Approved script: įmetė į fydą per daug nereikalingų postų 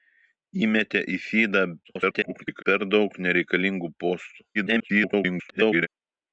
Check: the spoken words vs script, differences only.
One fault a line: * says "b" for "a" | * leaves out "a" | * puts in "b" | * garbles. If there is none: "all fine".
* garbles
* garbles